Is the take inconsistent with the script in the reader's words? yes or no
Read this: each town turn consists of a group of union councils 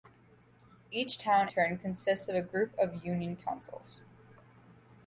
no